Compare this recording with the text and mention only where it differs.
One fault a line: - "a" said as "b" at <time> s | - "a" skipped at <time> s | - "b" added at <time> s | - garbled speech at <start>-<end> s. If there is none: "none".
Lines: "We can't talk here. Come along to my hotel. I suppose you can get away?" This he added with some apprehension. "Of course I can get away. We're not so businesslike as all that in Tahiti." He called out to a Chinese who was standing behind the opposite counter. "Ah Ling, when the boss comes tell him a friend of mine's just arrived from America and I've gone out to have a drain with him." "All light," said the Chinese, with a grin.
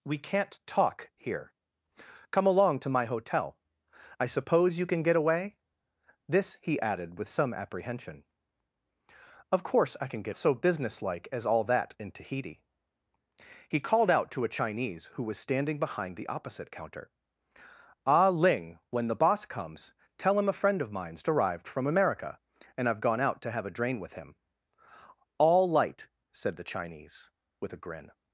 - "away We're not" skipped at 10.3 s
- "just" skipped at 21.2 s